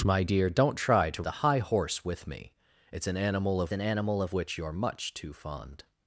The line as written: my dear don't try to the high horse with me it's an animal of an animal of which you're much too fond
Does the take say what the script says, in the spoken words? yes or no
yes